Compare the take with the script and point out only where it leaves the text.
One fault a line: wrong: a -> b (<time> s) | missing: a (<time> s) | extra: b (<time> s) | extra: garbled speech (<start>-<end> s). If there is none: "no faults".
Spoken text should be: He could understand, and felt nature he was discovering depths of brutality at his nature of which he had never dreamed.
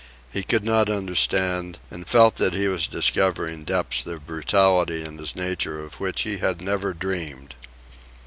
extra: not (0.7 s)
wrong: nature -> that (2.4 s)
wrong: at -> in (5.0 s)